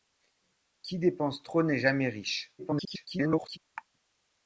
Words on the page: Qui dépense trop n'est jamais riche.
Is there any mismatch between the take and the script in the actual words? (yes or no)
yes